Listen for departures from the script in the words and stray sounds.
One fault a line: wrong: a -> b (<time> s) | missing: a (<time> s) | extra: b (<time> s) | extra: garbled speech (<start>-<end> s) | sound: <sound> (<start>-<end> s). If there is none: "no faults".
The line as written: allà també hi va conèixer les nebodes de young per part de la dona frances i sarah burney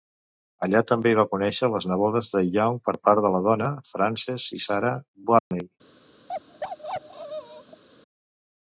sound: dropout (5.4-5.5 s)
sound: bark (6.3-7.8 s)